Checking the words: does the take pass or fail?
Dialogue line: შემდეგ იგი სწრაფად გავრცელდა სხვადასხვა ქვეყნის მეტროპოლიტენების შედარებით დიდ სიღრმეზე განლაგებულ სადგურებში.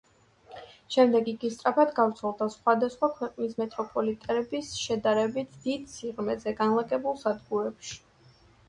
pass